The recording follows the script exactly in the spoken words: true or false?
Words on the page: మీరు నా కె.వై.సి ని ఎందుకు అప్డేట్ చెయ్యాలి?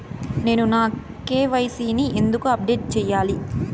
false